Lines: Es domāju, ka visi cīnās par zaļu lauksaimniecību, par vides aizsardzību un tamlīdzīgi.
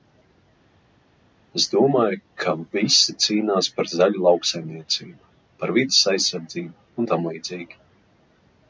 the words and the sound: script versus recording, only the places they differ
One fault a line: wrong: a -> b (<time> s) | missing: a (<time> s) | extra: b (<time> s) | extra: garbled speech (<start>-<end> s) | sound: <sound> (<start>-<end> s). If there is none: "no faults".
no faults